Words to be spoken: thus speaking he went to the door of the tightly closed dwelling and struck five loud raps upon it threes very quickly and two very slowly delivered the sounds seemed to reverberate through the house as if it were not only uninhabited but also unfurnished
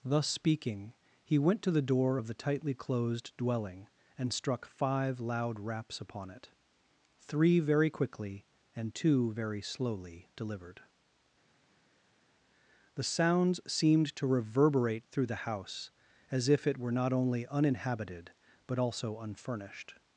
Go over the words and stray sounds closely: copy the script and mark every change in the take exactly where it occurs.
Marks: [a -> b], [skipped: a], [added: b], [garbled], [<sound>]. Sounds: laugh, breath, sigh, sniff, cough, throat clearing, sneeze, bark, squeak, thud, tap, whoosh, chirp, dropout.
thus speaking he went to the door of the tightly closed dwelling and struck five loud raps upon it [threes -> three] very quickly and two very slowly delivered the sounds seemed to reverberate through the house as if it were not only uninhabited but also unfurnished